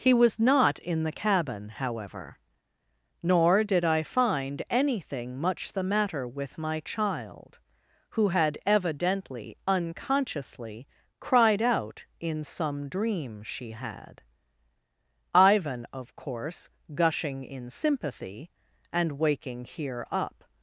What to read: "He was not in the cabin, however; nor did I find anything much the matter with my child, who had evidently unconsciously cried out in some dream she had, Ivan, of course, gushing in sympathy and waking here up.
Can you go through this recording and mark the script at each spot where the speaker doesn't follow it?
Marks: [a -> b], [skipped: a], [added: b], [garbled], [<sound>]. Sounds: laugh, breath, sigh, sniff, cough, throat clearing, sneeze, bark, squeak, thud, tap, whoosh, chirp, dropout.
"He was not in the cabin, however; nor did I find anything much the matter with my child, who had evidently unconsciously cried out in some dream she had, Ivan, of course, gushing in sympathy and waking here up.